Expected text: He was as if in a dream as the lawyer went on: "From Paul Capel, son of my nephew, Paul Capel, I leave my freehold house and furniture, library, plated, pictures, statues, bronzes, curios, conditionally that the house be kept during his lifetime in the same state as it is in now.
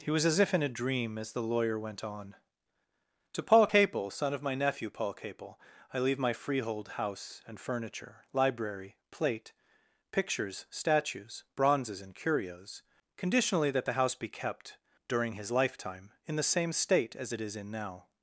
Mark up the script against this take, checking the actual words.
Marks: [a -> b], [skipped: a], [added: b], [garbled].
He was as if in a dream as the lawyer went on: ["From -> To] Paul Capel, son of my nephew, Paul Capel, I leave my freehold house and furniture, library, [plated, -> plate] pictures, statues, bronzes, [added: and] curios, conditionally that the house be kept during his lifetime in the same state as it is in now.